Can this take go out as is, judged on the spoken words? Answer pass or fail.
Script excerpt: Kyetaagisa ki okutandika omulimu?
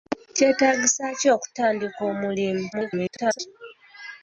fail